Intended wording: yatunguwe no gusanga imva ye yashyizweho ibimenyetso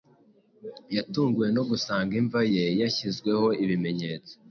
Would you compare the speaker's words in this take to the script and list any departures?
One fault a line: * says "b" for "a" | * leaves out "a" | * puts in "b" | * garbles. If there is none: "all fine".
all fine